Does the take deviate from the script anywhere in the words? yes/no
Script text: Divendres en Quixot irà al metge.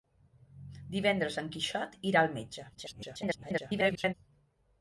yes